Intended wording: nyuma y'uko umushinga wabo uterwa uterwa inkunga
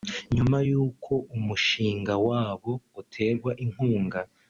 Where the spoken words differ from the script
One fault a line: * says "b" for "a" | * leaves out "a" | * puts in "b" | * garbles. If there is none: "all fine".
* leaves out "uterwa"